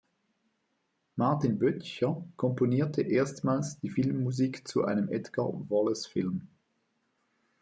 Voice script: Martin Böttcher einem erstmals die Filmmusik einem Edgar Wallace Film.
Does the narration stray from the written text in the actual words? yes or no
yes